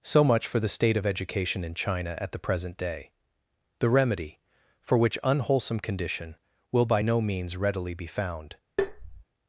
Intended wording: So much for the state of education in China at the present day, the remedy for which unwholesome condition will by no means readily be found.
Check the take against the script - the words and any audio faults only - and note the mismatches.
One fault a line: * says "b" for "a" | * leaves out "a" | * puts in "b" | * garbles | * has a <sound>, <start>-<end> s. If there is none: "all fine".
* has a tap, 8.8-9.2 s